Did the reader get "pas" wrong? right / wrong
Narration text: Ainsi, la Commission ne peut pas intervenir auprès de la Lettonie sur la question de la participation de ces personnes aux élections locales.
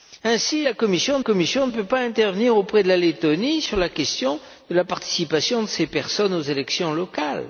right